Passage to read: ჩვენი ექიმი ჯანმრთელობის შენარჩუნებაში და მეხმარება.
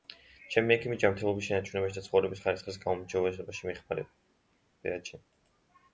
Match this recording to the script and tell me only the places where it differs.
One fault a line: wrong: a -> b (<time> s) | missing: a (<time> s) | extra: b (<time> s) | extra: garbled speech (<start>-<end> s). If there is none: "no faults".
wrong: ჩვენი -> ჩემი (0.5 s)
extra: ცხოვრების ხარისხის გაუმჯობესებაში (2.1 s)